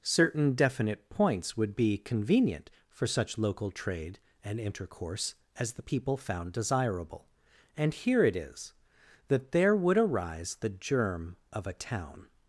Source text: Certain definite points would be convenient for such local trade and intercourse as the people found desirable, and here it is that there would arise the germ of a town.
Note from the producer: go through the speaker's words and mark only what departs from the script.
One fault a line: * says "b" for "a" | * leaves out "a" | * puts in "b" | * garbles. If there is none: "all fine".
all fine